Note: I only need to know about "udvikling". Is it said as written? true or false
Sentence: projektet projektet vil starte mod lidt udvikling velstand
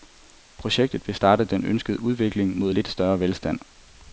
false